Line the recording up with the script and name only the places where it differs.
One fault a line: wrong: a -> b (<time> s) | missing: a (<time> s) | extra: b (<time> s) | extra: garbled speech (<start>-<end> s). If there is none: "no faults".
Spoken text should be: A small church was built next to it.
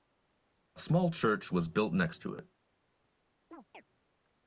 no faults